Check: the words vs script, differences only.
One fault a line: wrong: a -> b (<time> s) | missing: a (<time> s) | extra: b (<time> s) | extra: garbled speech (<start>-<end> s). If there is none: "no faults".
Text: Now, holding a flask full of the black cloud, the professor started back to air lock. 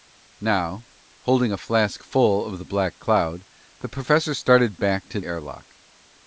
no faults